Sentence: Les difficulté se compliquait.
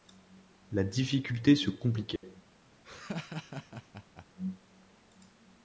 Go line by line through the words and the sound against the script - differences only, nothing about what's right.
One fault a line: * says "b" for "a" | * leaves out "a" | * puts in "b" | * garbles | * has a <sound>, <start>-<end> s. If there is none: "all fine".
* says "La" for "Les"
* has a dropout, 2.2-2.2 s
* has a laugh, 2.8-4.3 s